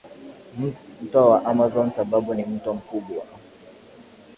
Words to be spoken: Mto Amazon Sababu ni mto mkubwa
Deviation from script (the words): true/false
true